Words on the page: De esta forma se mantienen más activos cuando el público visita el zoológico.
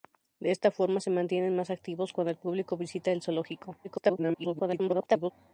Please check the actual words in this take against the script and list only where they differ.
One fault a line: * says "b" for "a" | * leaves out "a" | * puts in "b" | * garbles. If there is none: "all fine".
* garbles